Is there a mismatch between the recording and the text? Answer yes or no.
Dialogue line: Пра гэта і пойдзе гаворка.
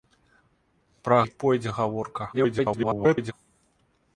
yes